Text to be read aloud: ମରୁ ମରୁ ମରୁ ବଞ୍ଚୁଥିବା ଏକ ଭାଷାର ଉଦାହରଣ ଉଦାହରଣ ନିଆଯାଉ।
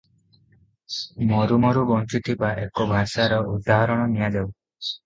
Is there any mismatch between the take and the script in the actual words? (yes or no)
yes